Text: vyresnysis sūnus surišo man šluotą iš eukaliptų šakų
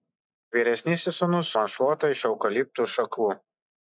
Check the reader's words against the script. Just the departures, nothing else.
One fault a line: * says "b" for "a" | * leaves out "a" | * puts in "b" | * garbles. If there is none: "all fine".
* leaves out "surišo"